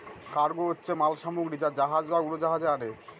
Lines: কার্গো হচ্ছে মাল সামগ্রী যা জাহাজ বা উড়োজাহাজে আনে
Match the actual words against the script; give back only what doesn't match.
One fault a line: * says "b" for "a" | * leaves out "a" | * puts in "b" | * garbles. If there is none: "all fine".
all fine